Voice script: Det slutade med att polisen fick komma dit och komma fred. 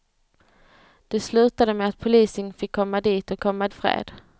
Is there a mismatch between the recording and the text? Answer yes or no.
no